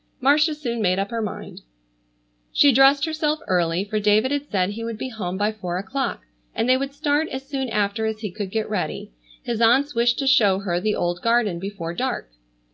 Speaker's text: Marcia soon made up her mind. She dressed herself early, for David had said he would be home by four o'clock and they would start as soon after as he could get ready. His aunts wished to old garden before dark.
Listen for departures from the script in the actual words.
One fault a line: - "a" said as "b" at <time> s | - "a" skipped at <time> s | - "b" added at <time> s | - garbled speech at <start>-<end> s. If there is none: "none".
- "show her the" added at 10.3 s